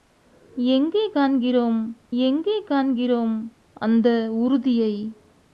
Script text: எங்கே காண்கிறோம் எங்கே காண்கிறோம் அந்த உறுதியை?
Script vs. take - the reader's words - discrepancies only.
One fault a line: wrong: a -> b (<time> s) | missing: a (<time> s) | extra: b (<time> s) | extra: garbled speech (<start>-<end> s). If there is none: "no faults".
no faults